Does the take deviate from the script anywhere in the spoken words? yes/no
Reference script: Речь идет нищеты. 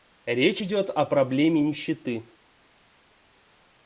yes